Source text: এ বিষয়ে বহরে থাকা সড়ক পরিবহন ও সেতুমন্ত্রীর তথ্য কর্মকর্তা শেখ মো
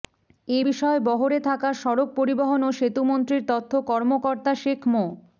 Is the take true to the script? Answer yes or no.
yes